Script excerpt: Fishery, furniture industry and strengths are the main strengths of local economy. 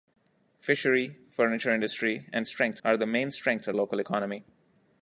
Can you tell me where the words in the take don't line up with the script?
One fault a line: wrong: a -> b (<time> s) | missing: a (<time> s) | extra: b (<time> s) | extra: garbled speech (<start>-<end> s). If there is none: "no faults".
no faults